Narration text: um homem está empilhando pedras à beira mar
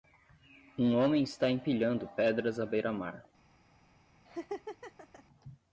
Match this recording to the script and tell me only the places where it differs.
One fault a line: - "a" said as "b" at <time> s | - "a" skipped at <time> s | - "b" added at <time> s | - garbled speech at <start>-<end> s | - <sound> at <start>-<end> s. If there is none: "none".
- laugh at 4.3-5.2 s